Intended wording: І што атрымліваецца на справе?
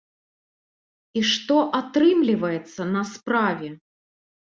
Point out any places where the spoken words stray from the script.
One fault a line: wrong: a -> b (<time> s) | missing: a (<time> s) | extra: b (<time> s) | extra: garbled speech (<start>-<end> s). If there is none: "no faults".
no faults